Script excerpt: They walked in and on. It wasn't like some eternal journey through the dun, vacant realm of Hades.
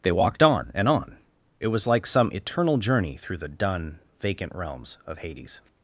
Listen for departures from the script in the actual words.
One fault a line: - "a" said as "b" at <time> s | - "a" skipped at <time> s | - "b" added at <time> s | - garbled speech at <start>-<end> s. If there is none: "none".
- "in" said as "on" at 0.4 s
- "wasn't" said as "was" at 1.7 s
- "realm" said as "realms" at 4.5 s